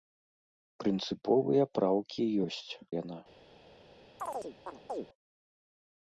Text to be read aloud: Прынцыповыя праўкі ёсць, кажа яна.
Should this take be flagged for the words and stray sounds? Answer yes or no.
yes